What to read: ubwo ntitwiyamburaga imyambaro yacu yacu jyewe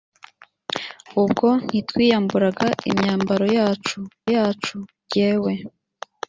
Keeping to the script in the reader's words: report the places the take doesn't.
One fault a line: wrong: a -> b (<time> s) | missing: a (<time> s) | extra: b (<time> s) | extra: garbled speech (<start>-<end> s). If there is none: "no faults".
no faults